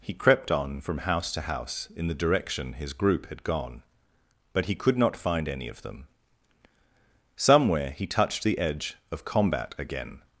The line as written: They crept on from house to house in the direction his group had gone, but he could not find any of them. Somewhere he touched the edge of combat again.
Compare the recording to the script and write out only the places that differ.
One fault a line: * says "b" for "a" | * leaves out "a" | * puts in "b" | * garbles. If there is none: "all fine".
* says "He" for "They"